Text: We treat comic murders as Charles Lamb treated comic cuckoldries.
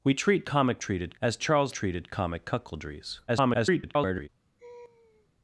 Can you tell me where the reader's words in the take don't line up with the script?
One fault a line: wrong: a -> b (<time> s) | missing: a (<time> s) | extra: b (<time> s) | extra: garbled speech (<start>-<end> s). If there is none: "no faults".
wrong: murders -> treated (0.8 s)
missing: Lamb (1.8 s)
extra: garbled speech (3.3-4.3 s)